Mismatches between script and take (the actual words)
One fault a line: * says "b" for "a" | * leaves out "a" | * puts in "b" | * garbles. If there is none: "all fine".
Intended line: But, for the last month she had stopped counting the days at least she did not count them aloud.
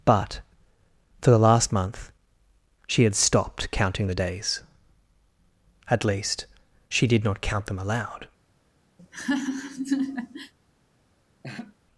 all fine